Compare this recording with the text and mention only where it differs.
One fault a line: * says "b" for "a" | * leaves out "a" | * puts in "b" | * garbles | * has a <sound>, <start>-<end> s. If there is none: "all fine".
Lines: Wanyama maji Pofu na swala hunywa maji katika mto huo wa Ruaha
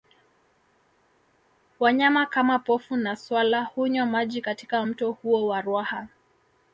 * says "kama" for "maji"